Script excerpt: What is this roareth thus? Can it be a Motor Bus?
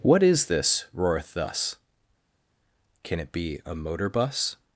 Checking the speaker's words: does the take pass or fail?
pass